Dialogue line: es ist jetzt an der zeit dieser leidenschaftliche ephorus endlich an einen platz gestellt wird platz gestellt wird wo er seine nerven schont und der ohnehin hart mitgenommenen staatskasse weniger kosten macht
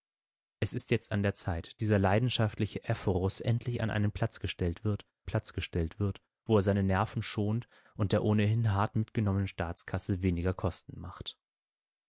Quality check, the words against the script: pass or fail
pass